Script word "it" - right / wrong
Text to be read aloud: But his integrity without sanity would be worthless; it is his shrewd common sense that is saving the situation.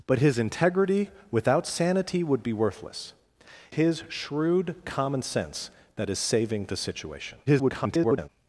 wrong